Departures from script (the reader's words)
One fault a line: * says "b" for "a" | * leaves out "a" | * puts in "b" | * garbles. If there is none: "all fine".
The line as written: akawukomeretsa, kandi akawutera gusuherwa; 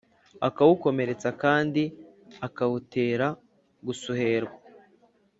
all fine